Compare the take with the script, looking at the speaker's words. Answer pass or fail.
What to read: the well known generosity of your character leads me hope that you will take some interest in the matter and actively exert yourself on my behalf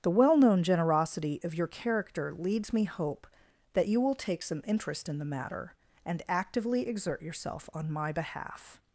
pass